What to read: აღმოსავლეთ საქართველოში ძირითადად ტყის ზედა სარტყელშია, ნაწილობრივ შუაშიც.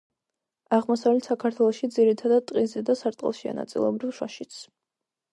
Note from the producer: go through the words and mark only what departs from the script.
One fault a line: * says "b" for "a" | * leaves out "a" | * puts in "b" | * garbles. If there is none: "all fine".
all fine